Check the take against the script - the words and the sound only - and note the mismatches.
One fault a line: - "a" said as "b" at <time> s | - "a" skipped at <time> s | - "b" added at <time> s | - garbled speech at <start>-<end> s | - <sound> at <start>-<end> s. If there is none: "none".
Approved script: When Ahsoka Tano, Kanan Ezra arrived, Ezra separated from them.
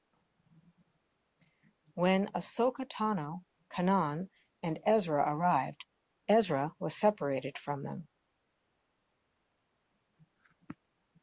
- "and" added at 4.6 s
- "was" added at 6.8 s